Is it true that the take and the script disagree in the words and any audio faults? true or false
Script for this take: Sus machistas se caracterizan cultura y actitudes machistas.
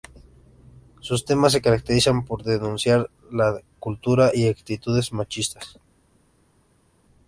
true